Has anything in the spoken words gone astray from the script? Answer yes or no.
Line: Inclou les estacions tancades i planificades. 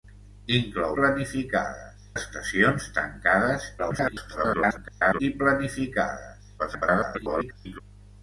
yes